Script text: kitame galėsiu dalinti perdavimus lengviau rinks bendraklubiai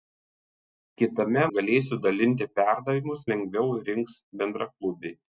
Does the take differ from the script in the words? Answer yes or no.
no